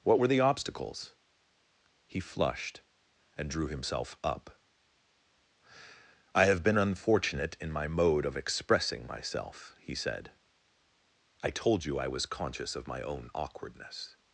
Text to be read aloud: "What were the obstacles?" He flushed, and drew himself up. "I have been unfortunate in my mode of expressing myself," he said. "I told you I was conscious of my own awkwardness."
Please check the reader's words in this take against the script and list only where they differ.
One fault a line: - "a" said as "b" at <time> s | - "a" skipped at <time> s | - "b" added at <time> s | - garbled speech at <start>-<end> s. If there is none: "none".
none